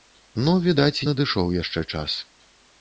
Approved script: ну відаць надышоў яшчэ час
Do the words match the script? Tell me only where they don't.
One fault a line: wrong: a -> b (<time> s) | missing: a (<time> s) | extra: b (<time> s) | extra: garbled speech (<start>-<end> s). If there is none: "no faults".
no faults